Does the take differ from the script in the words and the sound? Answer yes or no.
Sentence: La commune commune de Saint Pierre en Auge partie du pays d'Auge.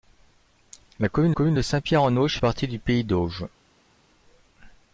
no